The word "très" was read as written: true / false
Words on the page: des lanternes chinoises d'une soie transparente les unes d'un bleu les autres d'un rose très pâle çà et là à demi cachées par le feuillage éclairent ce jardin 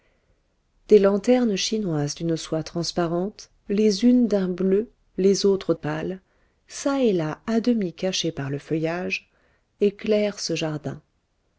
false